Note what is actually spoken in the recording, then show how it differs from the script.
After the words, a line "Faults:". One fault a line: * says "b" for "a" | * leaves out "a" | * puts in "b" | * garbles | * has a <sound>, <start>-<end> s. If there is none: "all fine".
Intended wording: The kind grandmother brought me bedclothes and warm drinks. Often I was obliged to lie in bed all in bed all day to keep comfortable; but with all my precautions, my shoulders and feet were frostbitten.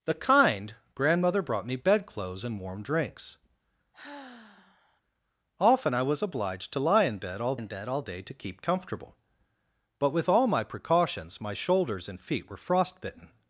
The kind grandmother brought me bedclothes and warm drinks. Often I was obliged to lie in bed all in bed all day to keep comfortable; but with all my precautions, my shoulders and feet were frostbitten.
Faults:
* has a sigh, 3.9-5.0 s